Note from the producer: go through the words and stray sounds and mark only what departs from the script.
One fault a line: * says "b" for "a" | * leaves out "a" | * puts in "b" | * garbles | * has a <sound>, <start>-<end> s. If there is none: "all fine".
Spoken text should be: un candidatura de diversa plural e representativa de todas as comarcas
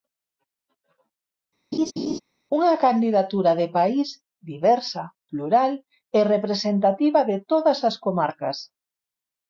* has a laugh, 1.7-2.2 s
* says "unha" for "un"
* puts in "país"